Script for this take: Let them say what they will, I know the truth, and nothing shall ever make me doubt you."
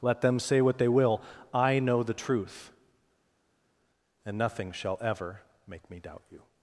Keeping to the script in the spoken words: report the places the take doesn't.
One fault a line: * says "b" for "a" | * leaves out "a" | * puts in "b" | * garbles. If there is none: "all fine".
all fine